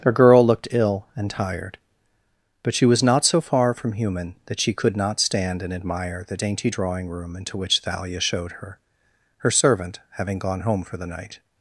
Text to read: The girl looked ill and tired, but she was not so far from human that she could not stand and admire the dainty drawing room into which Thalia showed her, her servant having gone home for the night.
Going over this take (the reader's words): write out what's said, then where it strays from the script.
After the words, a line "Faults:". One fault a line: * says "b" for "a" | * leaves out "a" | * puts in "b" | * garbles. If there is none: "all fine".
The girl looked ill and tired, but she was not so far from human that she could not stand and admire the dainty drawing room into which Thalia showed her, her servant having gone home for the night.
Faults:
all fine